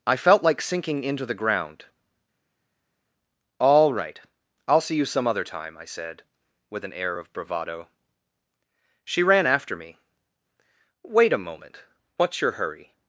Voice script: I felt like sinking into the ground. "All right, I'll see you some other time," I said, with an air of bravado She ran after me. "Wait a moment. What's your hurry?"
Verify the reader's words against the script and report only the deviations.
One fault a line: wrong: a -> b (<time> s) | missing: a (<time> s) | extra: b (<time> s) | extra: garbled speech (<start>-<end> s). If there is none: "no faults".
no faults